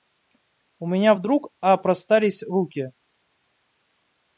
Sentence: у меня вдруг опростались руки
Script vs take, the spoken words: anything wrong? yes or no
no